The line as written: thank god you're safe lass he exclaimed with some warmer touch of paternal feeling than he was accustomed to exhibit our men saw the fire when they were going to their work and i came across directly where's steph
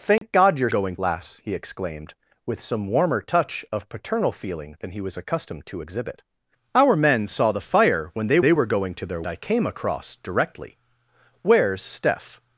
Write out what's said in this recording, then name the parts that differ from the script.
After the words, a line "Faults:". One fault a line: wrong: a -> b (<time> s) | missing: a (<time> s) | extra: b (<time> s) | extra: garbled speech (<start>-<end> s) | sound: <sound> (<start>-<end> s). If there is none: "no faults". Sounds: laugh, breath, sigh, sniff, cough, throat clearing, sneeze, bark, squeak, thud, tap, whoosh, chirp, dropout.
thank god you're going lass he exclaimed with some warmer touch of paternal feeling than he was accustomed to exhibit our men saw the fire when they they were going to their i came across directly where's steph
Faults:
sound: dropout (0.2-0.2 s)
wrong: safe -> going (0.7 s)
extra: they (8.4 s)
missing: work and (9.2 s)